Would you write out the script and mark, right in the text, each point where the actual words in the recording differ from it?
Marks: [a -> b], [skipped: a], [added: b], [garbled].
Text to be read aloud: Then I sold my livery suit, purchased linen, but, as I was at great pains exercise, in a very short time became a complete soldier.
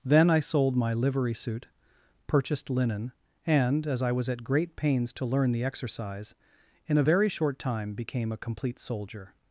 Then I sold my livery suit, purchased linen, [but, -> and] as I was at great pains [added: to learn the] exercise, in a very short time became a complete soldier.